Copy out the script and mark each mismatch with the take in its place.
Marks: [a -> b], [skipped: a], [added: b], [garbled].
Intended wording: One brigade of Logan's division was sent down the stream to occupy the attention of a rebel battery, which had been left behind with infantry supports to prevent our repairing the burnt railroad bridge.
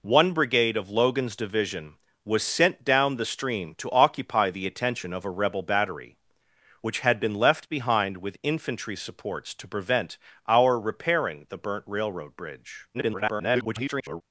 One brigade of Logan's division was sent down the stream to occupy the attention of a rebel battery, which had been left behind with infantry supports to prevent our repairing the burnt railroad bridge. [garbled]